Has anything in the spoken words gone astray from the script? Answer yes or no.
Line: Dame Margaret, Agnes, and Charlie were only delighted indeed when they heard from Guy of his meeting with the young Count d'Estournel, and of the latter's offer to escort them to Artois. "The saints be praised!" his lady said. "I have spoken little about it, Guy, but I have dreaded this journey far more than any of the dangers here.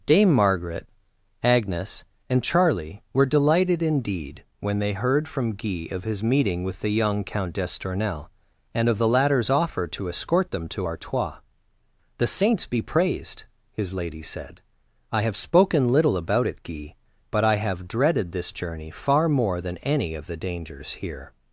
yes